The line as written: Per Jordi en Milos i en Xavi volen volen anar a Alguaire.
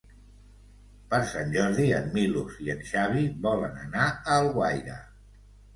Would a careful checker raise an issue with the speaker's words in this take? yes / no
yes